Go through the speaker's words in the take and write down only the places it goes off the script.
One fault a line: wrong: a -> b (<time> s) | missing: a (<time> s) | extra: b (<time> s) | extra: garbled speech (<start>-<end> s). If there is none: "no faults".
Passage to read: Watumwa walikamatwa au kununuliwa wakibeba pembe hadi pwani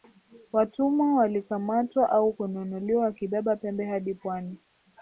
no faults